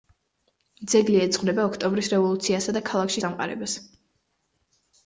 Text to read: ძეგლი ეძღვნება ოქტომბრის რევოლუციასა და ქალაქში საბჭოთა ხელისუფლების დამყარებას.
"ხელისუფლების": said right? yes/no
no